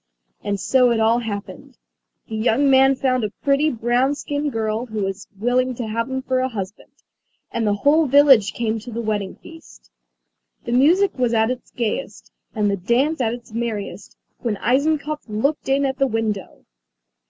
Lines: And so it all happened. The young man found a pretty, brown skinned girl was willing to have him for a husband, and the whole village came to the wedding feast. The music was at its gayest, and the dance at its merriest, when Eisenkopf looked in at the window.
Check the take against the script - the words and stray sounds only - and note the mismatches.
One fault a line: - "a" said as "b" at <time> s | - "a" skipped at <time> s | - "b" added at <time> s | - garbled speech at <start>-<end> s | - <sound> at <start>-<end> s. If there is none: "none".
- "who" added at 4.9 s